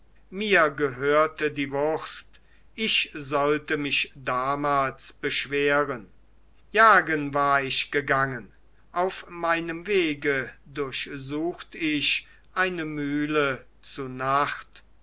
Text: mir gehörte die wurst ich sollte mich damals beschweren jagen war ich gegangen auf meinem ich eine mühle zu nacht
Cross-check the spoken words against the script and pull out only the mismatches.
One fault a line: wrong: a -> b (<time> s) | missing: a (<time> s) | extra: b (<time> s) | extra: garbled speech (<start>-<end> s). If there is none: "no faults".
extra: wege durchsucht (9.9 s)